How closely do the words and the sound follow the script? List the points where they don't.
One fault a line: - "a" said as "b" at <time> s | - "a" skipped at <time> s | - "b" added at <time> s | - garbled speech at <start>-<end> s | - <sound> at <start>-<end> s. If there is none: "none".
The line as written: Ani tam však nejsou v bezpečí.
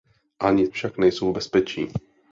- "tam" skipped at 0.7 s